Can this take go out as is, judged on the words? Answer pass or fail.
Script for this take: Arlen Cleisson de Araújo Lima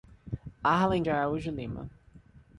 fail